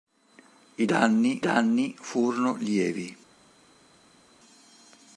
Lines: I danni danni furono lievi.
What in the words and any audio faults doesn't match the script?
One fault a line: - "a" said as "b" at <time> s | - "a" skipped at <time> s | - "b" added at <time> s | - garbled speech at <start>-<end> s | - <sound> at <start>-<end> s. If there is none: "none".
none